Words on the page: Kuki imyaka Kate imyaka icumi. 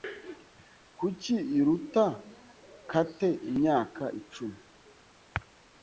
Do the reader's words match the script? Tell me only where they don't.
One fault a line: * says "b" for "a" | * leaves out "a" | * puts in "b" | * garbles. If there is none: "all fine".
* says "iruta" for "imyaka"